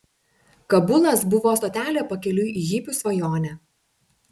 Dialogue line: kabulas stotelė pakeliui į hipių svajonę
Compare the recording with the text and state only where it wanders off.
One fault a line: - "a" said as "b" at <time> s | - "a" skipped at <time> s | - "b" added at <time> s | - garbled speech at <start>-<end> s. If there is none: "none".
- "buvo" added at 1.4 s